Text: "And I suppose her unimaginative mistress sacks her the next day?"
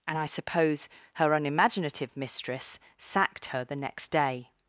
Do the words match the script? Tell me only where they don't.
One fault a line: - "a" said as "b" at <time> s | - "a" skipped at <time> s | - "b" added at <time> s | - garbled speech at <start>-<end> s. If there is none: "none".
- "sacks" said as "sacked" at 3.0 s